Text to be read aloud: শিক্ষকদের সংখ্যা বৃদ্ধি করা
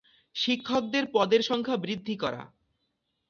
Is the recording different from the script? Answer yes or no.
yes